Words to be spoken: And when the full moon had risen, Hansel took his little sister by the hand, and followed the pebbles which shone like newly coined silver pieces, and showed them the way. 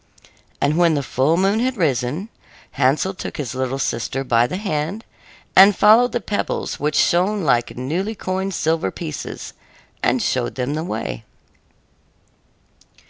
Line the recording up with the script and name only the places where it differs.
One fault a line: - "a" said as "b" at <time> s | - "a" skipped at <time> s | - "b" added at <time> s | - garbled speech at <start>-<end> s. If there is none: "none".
none